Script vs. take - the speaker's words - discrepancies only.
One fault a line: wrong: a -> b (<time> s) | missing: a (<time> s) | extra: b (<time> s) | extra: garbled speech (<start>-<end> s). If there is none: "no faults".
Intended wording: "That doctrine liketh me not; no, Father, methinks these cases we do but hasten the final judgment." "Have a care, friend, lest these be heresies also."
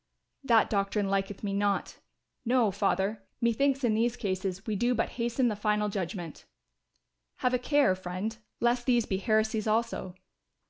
extra: in (3.8 s)